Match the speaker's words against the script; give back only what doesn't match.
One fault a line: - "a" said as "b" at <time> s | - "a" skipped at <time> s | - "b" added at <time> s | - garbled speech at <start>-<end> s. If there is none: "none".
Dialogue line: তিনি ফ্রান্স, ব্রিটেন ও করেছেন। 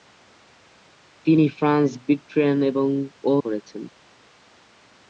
none